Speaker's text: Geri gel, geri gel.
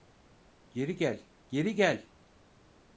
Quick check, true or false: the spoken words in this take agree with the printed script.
true